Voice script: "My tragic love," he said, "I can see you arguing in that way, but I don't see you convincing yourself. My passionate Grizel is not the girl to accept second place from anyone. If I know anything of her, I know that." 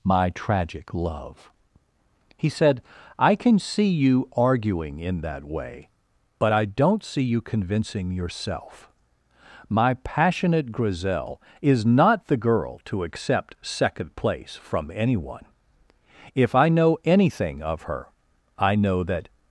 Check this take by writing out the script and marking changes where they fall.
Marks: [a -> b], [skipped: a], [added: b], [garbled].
"My tragic love," he said, "I can see you arguing in that way, but I don't see you convincing yourself. My passionate Grizel is not the girl to accept second place from anyone. If I know anything of her, I know that."